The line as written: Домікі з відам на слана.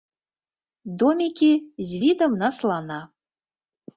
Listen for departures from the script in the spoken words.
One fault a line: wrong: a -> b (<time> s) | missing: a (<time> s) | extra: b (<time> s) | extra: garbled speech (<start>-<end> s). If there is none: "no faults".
no faults